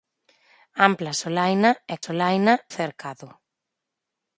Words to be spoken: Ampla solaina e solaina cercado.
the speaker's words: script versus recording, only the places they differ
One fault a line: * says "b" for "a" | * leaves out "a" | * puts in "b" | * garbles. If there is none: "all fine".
all fine